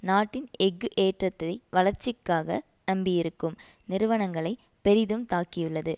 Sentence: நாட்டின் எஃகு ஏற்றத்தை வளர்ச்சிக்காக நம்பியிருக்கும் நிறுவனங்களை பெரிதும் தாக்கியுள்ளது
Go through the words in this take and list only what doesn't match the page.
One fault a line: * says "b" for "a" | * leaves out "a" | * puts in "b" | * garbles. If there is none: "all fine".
all fine